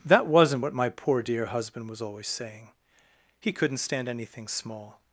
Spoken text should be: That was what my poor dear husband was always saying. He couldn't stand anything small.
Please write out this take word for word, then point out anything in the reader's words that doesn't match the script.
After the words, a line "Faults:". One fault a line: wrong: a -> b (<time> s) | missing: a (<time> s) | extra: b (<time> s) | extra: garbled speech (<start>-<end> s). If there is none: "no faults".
That wasn't what my poor dear husband was always saying. He couldn't stand anything small.
Faults:
wrong: was -> wasn't (0.2 s)